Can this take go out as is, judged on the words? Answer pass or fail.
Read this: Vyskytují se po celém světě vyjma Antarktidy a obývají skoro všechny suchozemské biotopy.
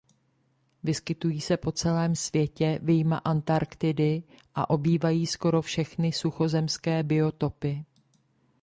pass